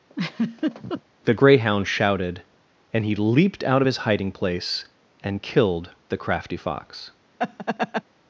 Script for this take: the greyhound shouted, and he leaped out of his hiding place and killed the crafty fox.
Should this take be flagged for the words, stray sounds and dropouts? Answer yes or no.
yes